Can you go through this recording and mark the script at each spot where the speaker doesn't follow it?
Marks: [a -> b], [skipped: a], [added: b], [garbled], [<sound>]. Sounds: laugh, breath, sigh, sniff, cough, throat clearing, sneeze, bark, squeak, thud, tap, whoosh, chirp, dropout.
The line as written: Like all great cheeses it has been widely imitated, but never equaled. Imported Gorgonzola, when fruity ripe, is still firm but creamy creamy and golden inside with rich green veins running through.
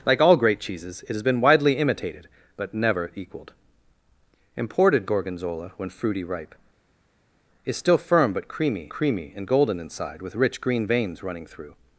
Like all great cheeses it has been widely imitated, but never equaled. Imported Gorgonzola, when fruity ripe, is still firm but creamy creamy and golden inside with rich green veins running through.